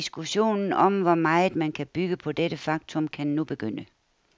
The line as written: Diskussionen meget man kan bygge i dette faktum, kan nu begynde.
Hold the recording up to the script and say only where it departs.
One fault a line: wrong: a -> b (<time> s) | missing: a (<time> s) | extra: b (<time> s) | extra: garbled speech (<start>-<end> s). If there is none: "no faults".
extra: om hvor (0.7 s)
wrong: i -> på (2.2 s)